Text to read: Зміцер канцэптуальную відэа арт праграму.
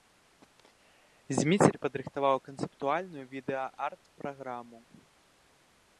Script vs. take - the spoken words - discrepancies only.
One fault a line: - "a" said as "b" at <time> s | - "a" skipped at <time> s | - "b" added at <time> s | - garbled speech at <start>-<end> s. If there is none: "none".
- "падрыхтаваў" added at 1.8 s